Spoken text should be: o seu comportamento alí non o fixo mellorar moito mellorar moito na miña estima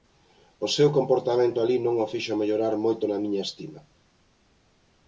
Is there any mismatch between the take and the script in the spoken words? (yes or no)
yes